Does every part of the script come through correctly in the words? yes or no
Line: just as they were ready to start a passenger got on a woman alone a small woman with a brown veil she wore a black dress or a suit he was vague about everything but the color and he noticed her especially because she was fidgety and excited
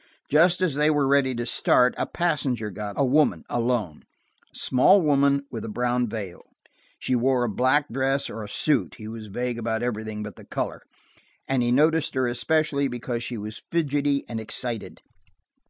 no